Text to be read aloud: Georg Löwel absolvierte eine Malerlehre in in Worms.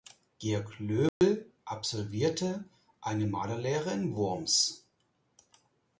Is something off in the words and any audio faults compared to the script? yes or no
yes